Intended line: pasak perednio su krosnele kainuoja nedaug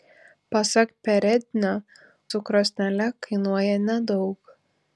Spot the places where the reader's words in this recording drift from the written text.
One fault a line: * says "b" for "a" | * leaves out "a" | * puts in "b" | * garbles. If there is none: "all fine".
all fine